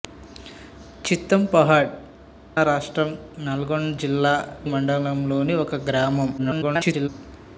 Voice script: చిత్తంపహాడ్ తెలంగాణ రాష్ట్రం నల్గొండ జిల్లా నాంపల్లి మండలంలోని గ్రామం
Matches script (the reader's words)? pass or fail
fail